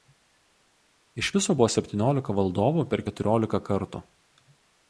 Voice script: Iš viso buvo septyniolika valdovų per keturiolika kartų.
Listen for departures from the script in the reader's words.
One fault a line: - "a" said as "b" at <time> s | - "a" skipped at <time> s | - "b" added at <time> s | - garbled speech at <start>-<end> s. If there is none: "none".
none